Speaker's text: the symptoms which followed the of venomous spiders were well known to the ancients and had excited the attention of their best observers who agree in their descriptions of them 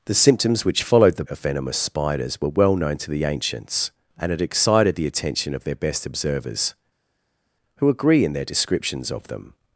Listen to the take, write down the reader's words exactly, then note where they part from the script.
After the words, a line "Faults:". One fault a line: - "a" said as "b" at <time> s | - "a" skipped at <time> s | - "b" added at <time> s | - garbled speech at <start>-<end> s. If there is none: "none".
the symptoms which followed the of venomous spiders were well known to the ancients and had excited the attention of their best observers who agree in their descriptions of them
Faults:
none